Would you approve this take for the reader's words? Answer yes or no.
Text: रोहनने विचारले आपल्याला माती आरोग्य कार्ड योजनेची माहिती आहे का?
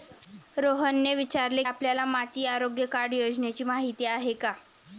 yes